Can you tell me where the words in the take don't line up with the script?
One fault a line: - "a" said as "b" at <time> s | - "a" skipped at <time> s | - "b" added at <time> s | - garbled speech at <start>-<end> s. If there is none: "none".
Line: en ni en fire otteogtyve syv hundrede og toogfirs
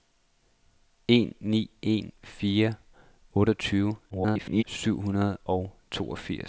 - garbled speech at 4.1-4.6 s